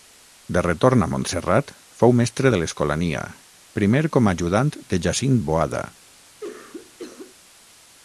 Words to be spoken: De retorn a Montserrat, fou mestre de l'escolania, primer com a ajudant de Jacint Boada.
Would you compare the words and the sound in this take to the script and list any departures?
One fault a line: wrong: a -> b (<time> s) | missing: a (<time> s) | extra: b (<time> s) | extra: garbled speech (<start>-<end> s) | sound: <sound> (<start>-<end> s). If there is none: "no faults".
sound: cough (6.4-7.4 s)